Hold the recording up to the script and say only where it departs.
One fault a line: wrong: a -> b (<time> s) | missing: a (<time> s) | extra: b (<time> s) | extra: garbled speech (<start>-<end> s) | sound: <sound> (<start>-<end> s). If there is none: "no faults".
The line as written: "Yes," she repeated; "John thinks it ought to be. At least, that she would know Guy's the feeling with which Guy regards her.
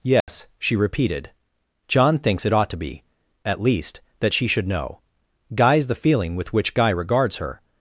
sound: dropout (0.2-0.3 s)
wrong: would -> should (4.5 s)